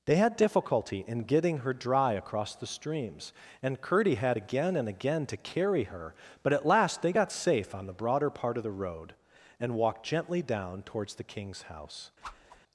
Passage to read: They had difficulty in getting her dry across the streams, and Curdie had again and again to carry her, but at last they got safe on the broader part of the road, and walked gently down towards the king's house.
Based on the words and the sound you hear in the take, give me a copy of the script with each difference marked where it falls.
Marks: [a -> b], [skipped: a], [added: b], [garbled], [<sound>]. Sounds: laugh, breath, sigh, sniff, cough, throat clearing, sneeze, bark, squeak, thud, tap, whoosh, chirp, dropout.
They had difficulty in getting her dry across the streams, and Curdie had again and again to carry her, but at last they got safe on the broader part of the road, and walked gently down towards the king's house. [whoosh]